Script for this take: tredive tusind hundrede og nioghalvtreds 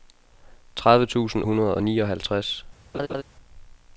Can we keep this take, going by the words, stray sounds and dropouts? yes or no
no